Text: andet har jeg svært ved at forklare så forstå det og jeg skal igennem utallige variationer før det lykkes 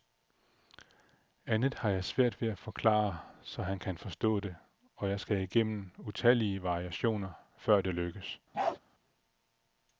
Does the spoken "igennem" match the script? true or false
true